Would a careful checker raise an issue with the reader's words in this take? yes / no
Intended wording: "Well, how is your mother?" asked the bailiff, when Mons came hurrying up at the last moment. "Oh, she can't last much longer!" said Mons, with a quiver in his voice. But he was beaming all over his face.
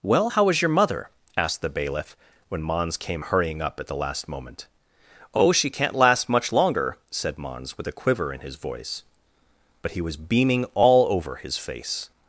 no